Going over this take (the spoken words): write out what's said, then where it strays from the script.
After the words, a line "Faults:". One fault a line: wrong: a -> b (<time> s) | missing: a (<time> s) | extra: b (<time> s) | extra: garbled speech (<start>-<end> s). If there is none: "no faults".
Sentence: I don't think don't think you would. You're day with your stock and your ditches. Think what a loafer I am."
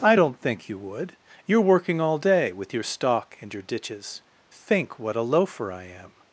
I don't think you would. You're working all day with your stock and your ditches. Think what a loafer I am."
Faults:
missing: don't think (0.7 s)
extra: working all (1.6 s)